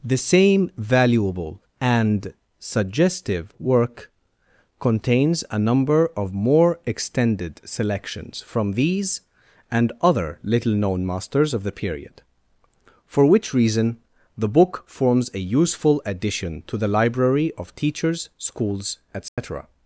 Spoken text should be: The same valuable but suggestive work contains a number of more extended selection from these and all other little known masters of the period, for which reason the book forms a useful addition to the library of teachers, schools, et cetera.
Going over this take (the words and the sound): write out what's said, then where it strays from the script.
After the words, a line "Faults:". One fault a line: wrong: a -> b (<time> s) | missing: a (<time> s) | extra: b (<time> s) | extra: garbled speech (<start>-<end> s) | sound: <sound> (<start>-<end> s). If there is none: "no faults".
The same valuable and suggestive work contains a number of more extended selections from these and other little known masters of the period, for which reason the book forms a useful addition to the library of teachers, schools, et cetera.
Faults:
wrong: but -> and (1.8 s)
wrong: selection -> selections (7.6 s)
missing: all (9.9 s)
sound: dropout (19.3-19.4 s)